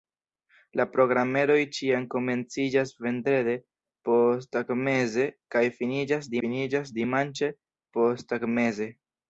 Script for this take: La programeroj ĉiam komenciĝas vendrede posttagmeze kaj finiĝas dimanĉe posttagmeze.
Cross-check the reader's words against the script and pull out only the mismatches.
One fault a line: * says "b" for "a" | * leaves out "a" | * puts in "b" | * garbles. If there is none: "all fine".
* puts in "finiĝas"